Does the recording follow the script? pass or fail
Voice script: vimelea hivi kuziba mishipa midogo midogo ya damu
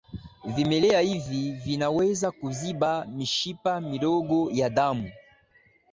fail